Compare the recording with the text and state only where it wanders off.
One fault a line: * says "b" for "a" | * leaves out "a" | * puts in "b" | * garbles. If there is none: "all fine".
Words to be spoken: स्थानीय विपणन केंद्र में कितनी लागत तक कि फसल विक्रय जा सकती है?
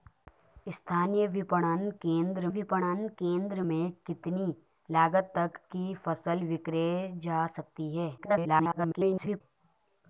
* puts in "विपणन केंद्र"
* garbles